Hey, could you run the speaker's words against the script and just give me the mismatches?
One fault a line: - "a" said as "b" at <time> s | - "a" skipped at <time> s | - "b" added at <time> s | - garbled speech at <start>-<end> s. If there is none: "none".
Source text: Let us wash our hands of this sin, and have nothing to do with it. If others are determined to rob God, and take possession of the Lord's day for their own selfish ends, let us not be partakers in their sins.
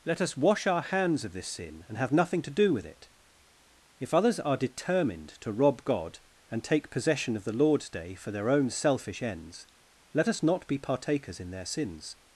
none